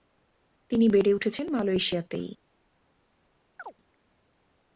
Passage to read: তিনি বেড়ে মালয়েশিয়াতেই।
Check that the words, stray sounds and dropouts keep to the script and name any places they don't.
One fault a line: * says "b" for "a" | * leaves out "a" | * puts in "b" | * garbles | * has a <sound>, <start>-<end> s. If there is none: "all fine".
* puts in "উঠেছেন"
* has a chirp, 3.6-3.7 s